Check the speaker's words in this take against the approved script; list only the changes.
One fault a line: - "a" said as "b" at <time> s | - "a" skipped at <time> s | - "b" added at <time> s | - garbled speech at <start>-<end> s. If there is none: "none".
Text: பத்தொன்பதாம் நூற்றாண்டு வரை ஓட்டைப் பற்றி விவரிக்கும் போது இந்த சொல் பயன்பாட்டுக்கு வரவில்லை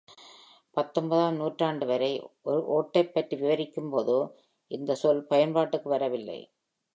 none